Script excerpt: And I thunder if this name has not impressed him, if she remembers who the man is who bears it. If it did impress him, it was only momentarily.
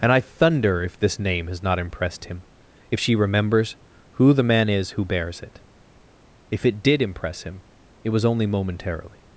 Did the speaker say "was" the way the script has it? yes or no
yes